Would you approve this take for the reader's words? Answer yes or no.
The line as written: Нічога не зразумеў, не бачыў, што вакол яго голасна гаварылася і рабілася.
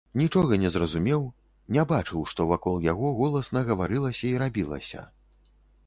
yes